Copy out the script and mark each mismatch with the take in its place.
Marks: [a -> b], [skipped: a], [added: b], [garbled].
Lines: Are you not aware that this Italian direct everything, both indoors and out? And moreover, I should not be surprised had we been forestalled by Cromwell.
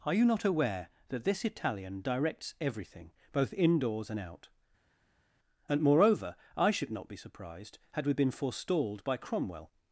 Are you not aware that this Italian [direct -> directs] everything, both indoors and out? And moreover, I should not be surprised had we been forestalled by Cromwell.